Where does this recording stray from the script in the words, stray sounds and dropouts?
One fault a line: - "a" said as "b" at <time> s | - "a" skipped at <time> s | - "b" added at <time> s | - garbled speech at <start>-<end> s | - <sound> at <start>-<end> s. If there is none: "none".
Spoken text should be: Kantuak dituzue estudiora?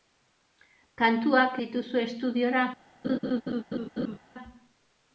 - laugh at 3.0-4.2 s